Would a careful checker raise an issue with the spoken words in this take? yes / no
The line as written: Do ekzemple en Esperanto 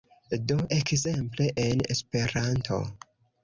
no